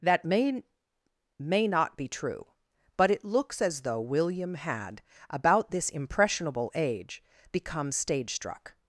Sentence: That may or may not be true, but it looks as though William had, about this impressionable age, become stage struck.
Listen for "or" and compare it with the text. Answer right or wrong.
wrong